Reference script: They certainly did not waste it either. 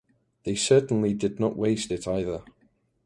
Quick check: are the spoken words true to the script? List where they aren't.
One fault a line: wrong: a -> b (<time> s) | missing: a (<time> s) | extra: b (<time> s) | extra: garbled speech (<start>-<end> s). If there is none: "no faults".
no faults